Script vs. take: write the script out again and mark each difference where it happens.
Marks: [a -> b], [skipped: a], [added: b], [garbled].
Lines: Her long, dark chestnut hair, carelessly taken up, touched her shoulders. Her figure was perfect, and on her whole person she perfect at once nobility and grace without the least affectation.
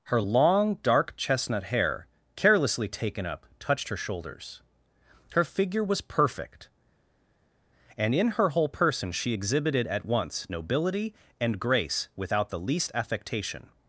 Her long, dark chestnut hair, carelessly taken up, touched her shoulders. Her figure was perfect, and [on -> in] her whole person she [perfect -> exhibited] at once nobility and grace without the least affectation.